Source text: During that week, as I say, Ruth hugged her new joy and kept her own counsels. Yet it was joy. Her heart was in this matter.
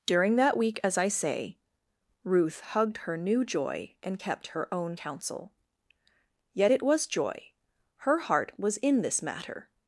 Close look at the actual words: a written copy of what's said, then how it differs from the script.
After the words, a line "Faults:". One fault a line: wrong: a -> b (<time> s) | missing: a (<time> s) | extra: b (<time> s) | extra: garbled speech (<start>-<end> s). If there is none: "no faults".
During that week, as I say, Ruth hugged her new joy and kept her own counsel. Yet it was joy. Her heart was in this matter.
Faults:
wrong: counsels -> counsel (4.9 s)